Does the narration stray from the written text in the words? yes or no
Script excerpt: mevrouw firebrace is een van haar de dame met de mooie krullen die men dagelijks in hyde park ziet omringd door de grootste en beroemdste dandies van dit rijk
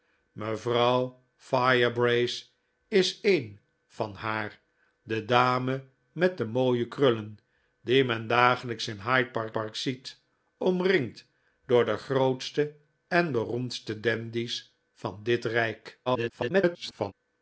yes